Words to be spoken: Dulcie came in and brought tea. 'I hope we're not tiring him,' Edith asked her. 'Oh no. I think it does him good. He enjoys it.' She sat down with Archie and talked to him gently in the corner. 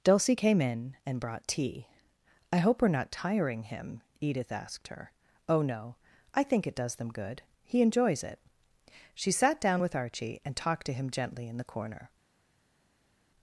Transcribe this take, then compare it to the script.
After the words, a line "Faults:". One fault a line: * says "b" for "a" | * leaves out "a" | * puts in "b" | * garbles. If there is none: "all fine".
Dulcie came in and brought tea. 'I hope we're not tiring him,' Edith asked her. 'Oh no. I think it does them good. He enjoys it.' She sat down with Archie and talked to him gently in the corner.
Faults:
* says "them" for "him"